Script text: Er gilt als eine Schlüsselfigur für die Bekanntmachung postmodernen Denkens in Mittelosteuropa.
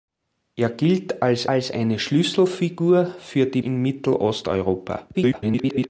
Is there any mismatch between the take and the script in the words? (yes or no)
yes